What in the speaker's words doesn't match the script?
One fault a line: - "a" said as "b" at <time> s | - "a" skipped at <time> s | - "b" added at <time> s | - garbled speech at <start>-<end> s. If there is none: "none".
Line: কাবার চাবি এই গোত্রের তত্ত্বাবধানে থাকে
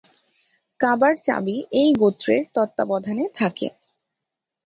none